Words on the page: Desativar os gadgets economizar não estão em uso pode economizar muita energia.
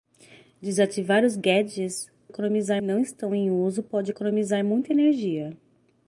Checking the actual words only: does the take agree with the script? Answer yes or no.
yes